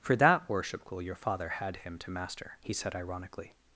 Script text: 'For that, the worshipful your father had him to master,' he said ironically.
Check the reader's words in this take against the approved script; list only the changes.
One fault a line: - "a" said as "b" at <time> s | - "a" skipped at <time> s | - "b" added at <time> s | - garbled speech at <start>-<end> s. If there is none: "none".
- "the" skipped at 0.5 s